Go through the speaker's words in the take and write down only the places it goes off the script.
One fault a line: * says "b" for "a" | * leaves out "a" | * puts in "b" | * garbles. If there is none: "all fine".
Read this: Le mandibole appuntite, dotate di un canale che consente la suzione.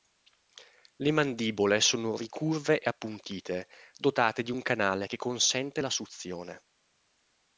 * puts in "sono ricurve e"